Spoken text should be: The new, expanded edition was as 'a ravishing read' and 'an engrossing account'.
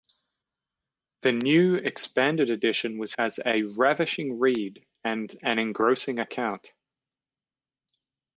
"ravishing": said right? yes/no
yes